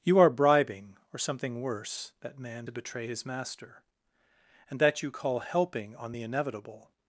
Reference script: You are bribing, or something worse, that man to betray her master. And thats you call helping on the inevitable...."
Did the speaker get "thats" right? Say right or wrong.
wrong